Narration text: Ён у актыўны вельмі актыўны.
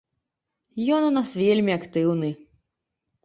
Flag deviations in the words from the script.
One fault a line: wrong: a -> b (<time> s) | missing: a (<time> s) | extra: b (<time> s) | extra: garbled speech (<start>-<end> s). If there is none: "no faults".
wrong: актыўны -> нас (1.2 s)